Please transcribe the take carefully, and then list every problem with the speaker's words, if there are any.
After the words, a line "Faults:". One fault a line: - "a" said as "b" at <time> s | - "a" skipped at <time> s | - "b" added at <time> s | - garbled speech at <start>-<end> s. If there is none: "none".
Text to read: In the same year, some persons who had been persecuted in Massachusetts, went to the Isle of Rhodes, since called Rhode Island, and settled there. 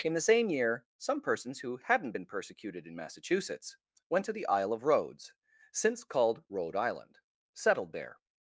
In the same year, some persons who hadn't been persecuted in Massachusetts, went to the Isle of Rhodes, since called Rhode Island, settled there.
Faults:
- "had" said as "hadn't" at 1.8 s
- "and" skipped at 7.2 s